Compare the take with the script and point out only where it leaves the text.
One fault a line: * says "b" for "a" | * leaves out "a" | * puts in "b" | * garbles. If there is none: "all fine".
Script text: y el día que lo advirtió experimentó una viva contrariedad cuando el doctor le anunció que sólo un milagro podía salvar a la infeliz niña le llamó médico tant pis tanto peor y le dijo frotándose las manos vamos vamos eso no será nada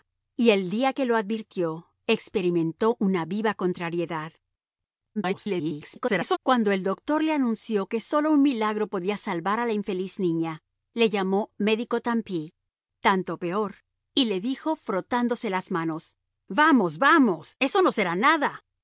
* garbles